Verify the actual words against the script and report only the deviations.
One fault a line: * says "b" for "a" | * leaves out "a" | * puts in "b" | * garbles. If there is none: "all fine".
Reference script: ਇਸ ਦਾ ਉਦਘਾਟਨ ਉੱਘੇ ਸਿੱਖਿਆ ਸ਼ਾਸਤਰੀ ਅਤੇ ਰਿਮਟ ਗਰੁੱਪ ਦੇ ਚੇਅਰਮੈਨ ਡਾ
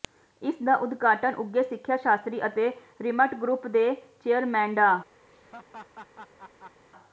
all fine